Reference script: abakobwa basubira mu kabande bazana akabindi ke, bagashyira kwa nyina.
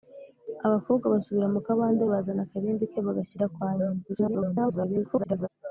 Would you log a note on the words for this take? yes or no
yes